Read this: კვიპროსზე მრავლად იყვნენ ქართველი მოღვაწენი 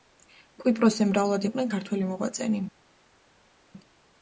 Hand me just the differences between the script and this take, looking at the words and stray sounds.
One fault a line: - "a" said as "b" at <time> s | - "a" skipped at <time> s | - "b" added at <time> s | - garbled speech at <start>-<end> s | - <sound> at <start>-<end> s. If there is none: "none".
none